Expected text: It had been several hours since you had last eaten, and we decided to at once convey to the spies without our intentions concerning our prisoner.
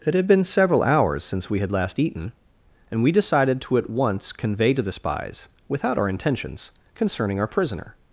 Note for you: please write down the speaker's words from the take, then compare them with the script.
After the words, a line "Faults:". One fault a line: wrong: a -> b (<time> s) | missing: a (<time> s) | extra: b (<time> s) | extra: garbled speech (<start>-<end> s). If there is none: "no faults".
It had been several hours since we had last eaten, and we decided to at once convey to the spies without our intentions concerning our prisoner.
Faults:
wrong: you -> we (1.5 s)